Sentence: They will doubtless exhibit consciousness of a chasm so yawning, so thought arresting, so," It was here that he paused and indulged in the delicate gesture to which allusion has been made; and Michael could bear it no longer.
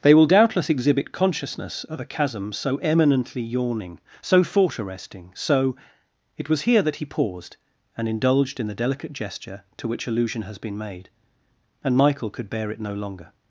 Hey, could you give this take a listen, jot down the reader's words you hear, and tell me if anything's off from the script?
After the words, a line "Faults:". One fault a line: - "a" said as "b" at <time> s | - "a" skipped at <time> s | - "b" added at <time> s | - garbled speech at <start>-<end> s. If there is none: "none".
They will doubtless exhibit consciousness of a chasm so eminently yawning, so thought arresting, so," It was here that he paused and indulged in the delicate gesture to which allusion has been made; and Michael could bear it no longer.
Faults:
- "eminently" added at 2.8 s